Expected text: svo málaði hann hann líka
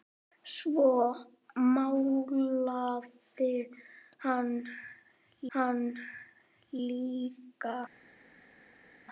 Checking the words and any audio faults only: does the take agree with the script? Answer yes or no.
yes